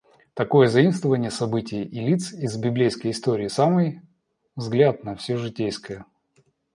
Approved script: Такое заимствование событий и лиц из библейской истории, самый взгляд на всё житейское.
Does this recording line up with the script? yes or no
yes